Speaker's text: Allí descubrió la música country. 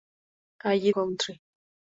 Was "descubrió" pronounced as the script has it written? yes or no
no